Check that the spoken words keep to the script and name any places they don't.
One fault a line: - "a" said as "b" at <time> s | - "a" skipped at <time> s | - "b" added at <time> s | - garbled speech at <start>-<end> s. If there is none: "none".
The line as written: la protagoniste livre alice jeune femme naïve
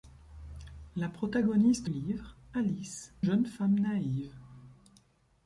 none